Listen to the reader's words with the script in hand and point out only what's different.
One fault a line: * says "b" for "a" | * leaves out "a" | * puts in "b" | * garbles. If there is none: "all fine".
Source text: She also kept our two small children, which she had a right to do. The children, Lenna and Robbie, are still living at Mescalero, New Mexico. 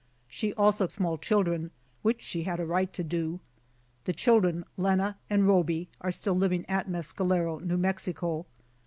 * leaves out "kept our two"